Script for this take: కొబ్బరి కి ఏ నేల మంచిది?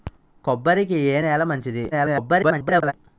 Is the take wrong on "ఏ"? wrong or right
right